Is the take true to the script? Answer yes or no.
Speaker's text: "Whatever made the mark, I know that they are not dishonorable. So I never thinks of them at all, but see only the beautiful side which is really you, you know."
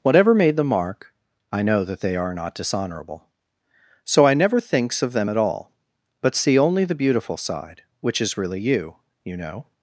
yes